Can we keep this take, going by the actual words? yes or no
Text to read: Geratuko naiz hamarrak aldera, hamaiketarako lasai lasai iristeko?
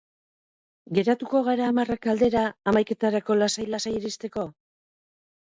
no